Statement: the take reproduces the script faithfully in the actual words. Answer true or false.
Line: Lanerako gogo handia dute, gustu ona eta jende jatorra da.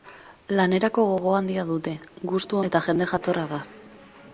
false